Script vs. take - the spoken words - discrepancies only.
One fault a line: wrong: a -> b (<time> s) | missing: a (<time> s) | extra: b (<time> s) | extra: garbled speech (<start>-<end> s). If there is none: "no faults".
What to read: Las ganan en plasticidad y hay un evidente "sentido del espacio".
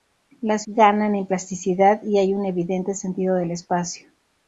no faults